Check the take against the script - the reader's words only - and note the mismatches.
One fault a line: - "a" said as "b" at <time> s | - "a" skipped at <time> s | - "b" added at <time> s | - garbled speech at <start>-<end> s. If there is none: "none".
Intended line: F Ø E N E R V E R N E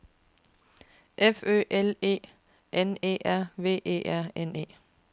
- "L" added at 1.7 s